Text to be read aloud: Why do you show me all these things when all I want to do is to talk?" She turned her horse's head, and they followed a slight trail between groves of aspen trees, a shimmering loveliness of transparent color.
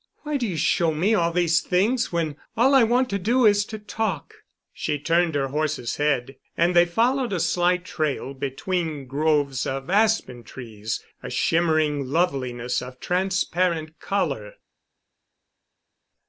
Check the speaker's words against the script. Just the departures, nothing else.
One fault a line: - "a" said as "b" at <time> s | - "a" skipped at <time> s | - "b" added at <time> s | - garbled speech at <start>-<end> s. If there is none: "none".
none